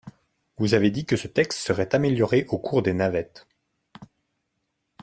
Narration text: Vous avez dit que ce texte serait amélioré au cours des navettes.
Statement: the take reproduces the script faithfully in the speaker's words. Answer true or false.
true